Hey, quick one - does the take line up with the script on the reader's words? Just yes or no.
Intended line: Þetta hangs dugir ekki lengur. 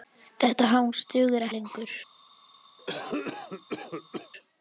no